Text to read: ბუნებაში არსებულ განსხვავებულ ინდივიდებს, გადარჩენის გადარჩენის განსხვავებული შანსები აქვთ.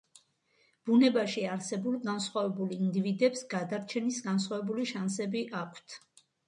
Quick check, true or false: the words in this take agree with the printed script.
false